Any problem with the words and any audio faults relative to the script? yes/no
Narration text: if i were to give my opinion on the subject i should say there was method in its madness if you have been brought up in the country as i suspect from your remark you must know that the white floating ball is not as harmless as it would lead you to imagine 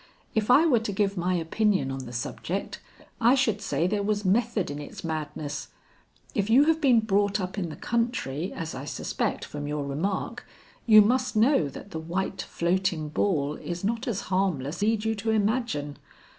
yes